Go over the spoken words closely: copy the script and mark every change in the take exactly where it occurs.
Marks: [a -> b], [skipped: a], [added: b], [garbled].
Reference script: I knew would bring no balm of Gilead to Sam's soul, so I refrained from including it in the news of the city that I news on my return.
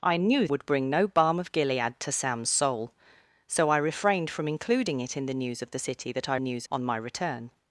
I knew would bring no balm of Gilead to Sam's soul, so I refrained from including it in the news of the city that I news on my return.